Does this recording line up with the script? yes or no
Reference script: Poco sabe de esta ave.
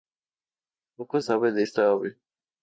yes